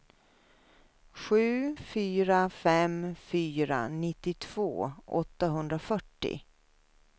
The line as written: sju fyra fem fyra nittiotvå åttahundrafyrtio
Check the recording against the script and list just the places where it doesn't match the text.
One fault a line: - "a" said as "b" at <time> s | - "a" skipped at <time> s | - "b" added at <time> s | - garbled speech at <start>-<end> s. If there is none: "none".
none